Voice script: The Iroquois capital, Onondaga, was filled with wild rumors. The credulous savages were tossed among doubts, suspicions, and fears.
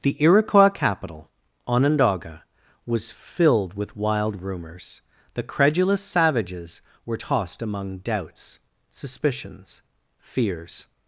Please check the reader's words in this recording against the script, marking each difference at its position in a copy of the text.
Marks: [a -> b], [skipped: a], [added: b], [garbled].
The Iroquois capital, Onondaga, was filled with wild rumors. The credulous savages were tossed among doubts, suspicions, [skipped: and] fears.